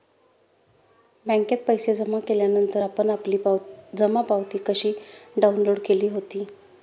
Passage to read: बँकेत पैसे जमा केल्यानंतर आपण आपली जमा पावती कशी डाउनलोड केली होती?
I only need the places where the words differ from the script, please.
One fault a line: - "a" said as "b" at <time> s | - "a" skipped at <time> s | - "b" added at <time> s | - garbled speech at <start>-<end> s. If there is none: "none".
none